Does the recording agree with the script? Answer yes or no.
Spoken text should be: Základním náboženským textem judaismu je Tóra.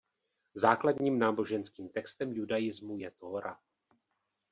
yes